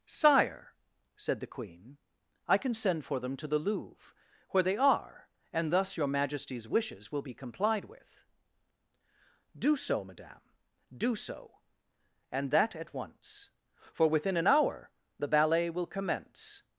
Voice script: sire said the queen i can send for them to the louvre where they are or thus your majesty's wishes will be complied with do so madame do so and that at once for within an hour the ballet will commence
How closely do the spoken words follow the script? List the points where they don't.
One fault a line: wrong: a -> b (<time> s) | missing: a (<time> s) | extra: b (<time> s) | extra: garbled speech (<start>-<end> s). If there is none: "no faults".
wrong: or -> and (5.5 s)